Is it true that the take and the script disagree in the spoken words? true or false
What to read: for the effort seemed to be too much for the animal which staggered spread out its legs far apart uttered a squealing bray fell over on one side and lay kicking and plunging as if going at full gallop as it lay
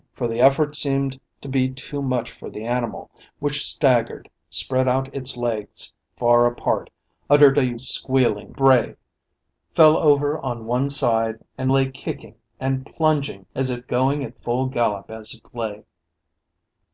false